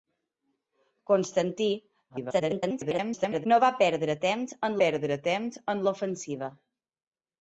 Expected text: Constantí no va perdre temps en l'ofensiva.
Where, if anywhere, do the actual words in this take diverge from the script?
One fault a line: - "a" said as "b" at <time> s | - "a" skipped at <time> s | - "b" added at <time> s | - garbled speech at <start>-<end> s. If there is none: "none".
- garbled speech at 2.1-3.5 s
- "perdre temps en" added at 4.8 s